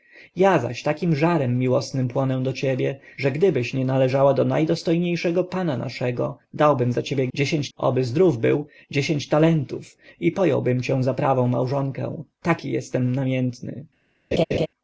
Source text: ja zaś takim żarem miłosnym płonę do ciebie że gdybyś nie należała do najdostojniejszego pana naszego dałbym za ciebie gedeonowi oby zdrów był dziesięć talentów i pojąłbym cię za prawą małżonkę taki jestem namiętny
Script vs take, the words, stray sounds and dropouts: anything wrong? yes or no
yes